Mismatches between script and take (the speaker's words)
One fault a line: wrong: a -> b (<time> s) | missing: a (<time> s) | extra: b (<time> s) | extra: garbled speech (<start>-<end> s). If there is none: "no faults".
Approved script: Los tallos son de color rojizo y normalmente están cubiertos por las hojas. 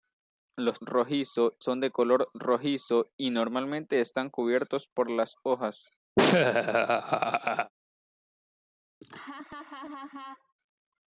wrong: tallos -> rojizo (0.8 s)